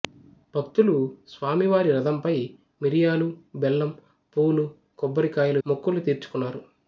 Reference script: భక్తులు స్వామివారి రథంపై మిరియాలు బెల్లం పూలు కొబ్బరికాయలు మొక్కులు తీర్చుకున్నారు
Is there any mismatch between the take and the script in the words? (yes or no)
no